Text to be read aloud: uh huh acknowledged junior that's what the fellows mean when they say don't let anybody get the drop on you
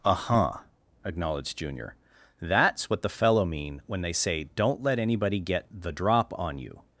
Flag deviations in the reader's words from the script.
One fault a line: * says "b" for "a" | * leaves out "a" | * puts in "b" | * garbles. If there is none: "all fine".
* says "fellow" for "fellows"